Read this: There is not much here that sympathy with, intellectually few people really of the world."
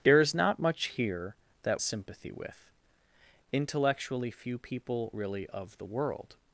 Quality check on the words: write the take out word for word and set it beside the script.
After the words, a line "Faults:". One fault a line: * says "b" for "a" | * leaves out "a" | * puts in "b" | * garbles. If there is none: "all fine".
There is not much here that sympathy with, intellectually few people really of the world."
Faults:
all fine